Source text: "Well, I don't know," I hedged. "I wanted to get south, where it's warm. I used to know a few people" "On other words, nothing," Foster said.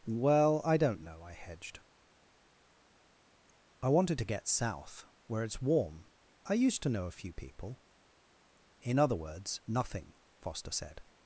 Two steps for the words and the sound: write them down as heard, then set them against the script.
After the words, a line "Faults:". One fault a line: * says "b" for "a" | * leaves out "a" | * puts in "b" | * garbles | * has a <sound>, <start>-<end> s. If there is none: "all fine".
"Well, I don't know," I hedged. "I wanted to get south, where it's warm. I used to know a few people" "In other words, nothing," Foster said.
Faults:
* says "In" for "On"